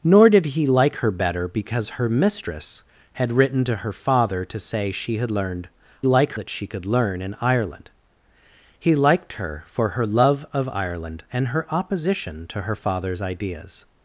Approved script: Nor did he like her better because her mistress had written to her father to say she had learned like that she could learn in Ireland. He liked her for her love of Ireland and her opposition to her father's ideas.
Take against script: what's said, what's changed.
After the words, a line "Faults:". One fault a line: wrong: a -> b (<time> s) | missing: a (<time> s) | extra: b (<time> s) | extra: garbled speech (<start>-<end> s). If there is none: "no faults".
Nor did he like her better because her mistress had written to her father to say she had learned like that she could learn in Ireland. He liked her for her love of Ireland and her opposition to her father's ideas.
Faults:
no faults